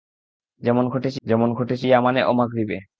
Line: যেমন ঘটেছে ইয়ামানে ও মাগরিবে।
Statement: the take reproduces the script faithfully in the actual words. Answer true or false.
false